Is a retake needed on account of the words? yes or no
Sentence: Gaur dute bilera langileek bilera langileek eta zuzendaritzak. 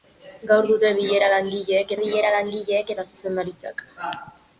no